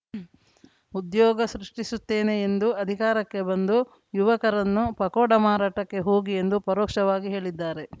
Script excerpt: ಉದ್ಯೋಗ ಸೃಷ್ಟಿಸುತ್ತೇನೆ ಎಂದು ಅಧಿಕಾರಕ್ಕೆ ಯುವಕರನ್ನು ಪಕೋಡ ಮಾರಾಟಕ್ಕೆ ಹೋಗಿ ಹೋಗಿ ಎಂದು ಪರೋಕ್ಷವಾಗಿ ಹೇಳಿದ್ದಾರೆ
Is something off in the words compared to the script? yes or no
yes